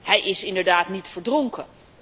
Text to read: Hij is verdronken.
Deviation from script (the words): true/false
true